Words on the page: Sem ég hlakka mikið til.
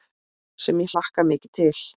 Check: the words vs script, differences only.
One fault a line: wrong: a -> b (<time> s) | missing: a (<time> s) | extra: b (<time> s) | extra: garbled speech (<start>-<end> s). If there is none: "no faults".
no faults